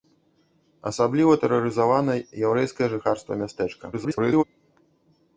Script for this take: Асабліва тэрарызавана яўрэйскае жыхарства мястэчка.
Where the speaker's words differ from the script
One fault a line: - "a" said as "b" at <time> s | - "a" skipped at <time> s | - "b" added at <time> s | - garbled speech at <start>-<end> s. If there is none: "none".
- garbled speech at 3.9-4.4 s